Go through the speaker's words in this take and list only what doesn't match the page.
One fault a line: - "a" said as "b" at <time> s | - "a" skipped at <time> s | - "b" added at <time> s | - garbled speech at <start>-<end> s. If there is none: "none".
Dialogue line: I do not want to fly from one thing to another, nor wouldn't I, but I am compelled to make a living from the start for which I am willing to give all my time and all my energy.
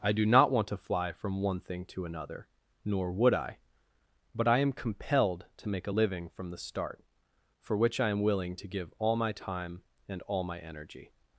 - "wouldn't" said as "would" at 3.1 s